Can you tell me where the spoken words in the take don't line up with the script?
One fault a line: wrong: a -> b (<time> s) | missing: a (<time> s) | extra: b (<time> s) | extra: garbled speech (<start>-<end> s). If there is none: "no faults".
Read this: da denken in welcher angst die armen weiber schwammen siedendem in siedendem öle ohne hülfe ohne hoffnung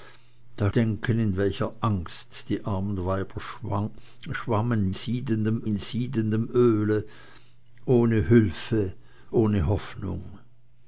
no faults